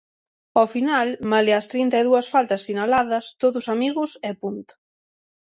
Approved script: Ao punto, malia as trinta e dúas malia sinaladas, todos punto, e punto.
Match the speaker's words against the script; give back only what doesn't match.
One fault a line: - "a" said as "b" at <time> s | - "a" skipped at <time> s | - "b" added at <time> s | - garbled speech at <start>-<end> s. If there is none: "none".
- "punto" said as "final" at 0.8 s
- "malia" said as "faltas" at 2.3 s
- "punto" said as "amigos" at 3.7 s